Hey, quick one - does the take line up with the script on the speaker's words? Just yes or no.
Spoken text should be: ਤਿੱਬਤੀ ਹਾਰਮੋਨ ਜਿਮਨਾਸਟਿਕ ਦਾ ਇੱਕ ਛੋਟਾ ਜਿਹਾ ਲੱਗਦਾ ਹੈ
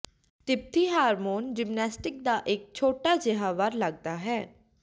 no